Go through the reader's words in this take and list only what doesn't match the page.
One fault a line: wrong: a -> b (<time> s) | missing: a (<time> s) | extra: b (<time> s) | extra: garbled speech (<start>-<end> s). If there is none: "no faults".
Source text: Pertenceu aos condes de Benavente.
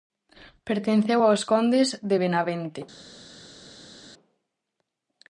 no faults